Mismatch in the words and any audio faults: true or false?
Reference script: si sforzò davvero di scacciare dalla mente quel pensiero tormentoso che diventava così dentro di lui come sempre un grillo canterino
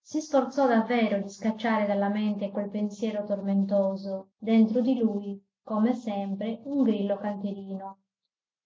true